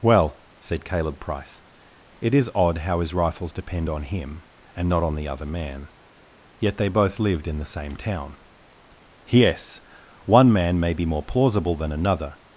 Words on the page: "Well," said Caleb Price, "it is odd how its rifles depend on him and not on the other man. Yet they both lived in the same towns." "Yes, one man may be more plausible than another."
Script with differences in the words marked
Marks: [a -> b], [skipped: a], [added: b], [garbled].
"Well," said Caleb Price, "it is odd how [its -> his] rifles depend on him and not on the other man. Yet they both lived in the same [towns." -> town] "Yes, one man may be more plausible than another."